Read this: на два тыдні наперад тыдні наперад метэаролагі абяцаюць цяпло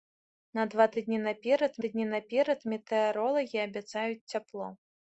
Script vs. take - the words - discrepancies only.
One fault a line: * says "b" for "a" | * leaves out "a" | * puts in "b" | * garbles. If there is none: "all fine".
all fine